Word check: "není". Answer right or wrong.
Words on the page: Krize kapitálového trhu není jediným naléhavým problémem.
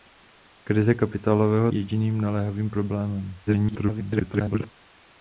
wrong